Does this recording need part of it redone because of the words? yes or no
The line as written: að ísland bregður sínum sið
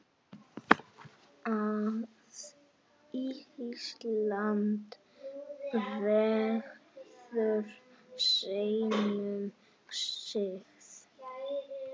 no